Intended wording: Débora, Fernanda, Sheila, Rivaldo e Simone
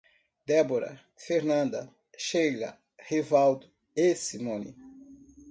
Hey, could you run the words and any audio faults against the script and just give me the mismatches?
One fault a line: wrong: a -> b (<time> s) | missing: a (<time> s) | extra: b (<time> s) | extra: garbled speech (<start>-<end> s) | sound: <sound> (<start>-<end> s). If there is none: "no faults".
no faults